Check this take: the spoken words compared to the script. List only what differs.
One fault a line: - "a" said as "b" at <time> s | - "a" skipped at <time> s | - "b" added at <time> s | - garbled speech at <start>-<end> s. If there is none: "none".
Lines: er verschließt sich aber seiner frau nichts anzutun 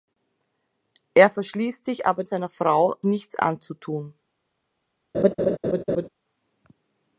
none